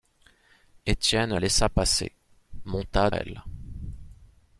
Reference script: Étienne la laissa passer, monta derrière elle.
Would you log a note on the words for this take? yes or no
yes